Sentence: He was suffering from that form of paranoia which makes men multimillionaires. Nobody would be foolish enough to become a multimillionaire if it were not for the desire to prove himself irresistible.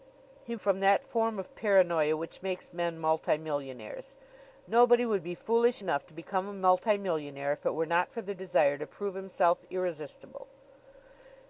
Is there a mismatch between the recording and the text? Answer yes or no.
yes